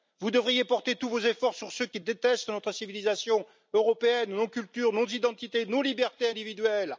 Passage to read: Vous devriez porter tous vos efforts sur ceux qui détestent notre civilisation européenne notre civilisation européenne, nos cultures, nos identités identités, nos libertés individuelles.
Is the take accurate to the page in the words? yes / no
no